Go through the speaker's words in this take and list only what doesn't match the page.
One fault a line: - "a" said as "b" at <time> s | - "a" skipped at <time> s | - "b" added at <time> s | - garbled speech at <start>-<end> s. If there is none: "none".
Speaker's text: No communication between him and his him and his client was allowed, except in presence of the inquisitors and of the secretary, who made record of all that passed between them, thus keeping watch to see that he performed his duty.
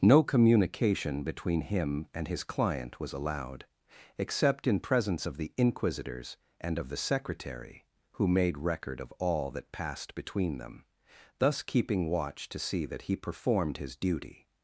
- "him and his" skipped at 2.4 s